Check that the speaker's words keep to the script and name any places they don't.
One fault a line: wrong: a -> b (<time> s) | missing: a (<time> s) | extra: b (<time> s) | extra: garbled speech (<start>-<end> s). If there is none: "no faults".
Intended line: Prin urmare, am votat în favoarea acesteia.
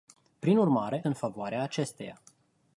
missing: am votat (1.1 s)